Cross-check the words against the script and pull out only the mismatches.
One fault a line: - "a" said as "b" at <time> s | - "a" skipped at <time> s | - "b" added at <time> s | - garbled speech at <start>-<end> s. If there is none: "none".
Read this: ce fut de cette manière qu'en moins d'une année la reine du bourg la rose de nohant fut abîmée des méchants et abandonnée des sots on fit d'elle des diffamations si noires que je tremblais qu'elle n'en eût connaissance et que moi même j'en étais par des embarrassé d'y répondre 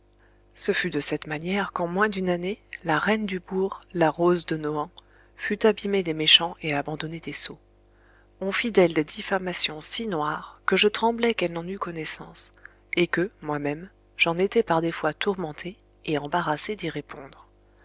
- "fois tourmenté et" added at 14.9 s